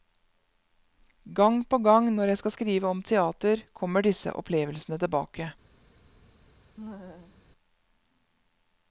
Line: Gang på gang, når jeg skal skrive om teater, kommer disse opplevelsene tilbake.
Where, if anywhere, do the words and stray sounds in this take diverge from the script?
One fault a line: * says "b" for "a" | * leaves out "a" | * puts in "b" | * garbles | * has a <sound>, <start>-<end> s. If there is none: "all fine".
* has a laugh, 6.8-7.4 s